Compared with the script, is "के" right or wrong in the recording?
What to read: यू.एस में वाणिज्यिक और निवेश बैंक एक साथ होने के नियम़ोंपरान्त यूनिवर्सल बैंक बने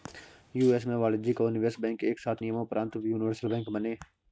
wrong